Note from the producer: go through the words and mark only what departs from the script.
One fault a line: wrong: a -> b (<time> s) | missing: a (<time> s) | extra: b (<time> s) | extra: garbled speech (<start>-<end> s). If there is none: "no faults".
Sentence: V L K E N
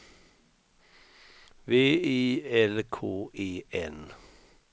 extra: I (1.7 s)